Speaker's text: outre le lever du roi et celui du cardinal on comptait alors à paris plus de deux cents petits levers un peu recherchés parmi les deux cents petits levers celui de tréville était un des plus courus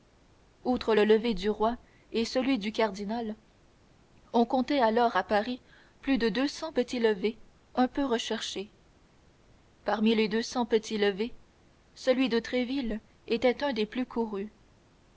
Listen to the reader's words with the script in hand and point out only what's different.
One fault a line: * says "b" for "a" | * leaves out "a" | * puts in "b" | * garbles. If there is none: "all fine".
all fine